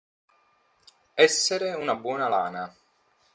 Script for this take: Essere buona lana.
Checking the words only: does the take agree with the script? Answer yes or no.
no